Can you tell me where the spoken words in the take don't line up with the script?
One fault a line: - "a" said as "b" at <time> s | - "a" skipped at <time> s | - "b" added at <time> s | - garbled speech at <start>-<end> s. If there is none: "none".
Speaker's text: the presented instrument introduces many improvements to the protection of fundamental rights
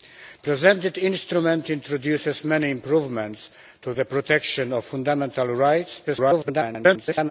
- garbled speech at 6.1-7.3 s